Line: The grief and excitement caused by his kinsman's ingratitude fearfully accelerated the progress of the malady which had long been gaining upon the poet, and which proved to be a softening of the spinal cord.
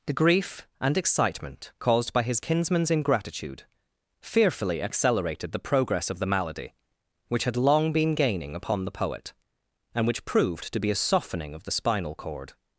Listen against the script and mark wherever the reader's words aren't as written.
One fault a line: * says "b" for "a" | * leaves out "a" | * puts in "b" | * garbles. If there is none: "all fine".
all fine